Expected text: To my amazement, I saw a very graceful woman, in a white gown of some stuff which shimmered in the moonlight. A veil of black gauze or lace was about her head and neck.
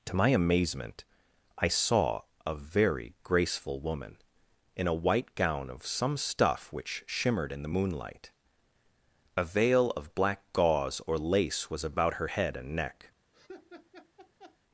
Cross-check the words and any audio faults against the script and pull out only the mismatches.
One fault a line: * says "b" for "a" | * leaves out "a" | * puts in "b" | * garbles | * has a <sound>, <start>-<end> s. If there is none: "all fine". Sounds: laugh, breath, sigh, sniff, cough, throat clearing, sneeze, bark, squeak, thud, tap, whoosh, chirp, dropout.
* has a laugh, 13.3-14.6 s